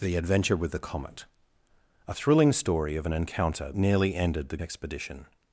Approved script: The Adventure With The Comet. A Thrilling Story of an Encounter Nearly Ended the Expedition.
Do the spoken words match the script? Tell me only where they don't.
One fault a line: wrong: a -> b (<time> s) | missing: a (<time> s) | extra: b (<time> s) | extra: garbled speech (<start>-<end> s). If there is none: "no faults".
no faults